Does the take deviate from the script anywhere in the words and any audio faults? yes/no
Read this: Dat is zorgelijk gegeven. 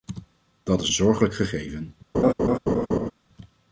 yes